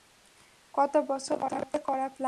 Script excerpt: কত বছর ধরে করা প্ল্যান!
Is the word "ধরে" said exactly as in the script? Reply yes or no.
yes